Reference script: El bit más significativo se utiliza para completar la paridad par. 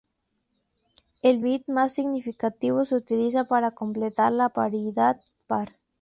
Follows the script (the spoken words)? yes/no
yes